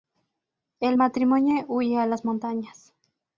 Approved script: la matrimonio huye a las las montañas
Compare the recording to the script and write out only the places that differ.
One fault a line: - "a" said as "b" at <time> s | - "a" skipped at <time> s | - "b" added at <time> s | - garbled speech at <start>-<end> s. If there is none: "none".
- "la" said as "el" at 0.8 s
- "las" skipped at 2.2 s